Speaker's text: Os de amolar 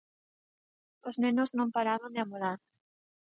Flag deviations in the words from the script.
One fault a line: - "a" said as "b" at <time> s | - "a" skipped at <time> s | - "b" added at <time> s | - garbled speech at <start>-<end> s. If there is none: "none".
- "nenos non paraban" added at 1.2 s